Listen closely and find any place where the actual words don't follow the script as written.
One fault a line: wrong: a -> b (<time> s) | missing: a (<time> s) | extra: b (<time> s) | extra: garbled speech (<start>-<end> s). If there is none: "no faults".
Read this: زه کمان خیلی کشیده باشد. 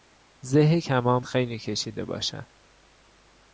no faults